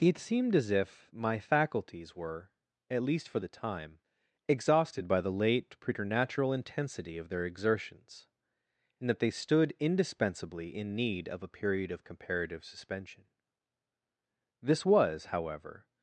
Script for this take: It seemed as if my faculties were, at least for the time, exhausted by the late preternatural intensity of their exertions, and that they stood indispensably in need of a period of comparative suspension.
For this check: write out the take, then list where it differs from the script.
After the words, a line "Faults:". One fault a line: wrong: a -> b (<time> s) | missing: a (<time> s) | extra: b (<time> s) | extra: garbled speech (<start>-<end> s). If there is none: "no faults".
It seemed as if my faculties were, at least for the time, exhausted by the late preternatural intensity of their exertions, and that they stood indispensably in need of a period of comparative suspension. This was however
Faults:
extra: This was however (14.6 s)